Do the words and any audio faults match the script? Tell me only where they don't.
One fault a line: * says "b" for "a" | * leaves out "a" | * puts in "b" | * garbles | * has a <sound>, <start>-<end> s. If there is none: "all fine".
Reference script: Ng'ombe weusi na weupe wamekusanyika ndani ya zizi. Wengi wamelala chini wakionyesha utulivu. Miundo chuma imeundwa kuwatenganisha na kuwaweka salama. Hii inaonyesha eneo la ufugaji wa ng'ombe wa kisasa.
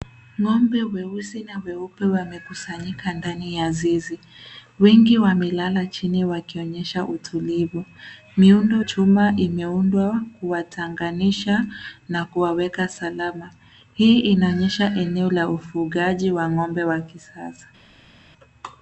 all fine